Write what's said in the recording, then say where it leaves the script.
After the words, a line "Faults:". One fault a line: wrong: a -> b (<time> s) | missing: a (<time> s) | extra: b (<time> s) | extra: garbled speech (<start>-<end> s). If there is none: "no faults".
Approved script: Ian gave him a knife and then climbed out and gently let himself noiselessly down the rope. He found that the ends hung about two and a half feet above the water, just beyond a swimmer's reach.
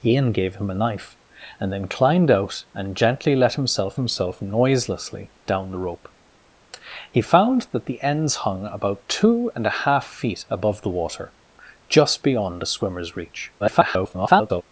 Ian gave him a knife and then climbed out and gently let himself himself noiselessly down the rope. He found that the ends hung about two and a half feet above the water, just beyond a swimmer's reach. [garbled]
Faults:
extra: himself (3.9 s)
extra: garbled speech (13.6-14.6 s)